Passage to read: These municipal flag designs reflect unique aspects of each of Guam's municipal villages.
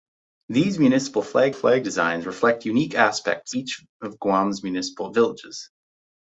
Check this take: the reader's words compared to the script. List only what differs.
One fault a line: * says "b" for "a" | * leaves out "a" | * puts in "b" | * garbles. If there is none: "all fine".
* puts in "flag"
* leaves out "of"